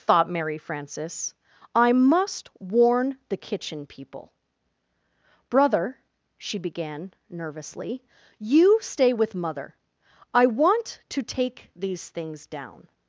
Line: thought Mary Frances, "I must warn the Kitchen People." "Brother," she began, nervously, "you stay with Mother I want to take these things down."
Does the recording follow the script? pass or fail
pass